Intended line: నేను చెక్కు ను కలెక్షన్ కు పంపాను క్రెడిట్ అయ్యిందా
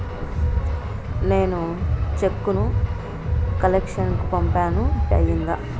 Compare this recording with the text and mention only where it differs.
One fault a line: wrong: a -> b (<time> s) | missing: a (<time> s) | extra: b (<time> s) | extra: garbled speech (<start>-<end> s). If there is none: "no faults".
missing: క్రెడిట్ (4.8 s)